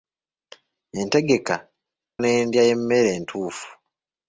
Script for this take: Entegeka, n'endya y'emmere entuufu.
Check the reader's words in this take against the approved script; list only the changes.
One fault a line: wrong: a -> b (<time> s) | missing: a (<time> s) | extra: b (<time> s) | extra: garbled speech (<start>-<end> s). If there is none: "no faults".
no faults